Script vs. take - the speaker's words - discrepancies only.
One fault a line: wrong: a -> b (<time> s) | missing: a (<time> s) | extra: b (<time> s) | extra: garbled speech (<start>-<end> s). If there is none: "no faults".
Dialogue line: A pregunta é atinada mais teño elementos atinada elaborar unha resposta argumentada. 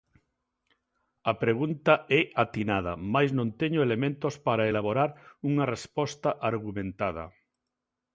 extra: non (3.4 s)
wrong: atinada -> para (4.5 s)